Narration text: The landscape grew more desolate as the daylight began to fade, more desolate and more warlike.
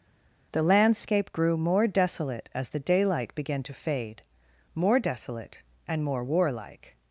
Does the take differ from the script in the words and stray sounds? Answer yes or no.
no